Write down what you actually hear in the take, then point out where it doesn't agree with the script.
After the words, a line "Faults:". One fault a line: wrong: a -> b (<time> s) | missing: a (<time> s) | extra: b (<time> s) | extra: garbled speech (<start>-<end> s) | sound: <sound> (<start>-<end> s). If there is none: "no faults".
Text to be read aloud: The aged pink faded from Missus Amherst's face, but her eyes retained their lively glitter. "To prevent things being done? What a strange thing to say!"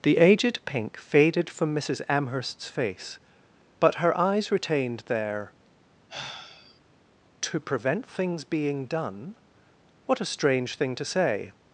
The aged pink faded from Missus Amherst's face, but her eyes retained their. "To prevent things being done? What a strange thing to say!"
Faults:
missing: lively glitter (5.5 s)
sound: sigh (6.1-6.8 s)